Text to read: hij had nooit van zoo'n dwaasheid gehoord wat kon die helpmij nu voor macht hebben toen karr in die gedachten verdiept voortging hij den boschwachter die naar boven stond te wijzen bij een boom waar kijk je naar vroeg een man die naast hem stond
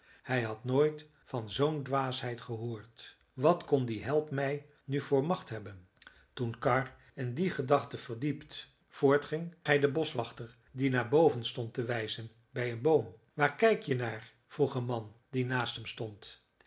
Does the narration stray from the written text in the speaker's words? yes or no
no